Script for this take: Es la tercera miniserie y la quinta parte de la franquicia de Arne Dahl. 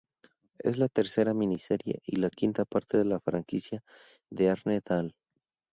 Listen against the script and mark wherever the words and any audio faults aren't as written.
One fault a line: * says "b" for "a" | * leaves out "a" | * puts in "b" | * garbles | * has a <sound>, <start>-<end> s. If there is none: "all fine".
all fine